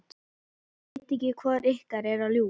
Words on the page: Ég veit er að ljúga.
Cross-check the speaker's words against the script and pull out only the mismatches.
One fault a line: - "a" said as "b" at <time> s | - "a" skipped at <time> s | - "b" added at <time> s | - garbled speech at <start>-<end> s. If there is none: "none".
- "ekki hvor ykkar" added at 1.2 s